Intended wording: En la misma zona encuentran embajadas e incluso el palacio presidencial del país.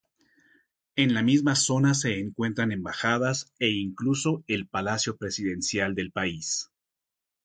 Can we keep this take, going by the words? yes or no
no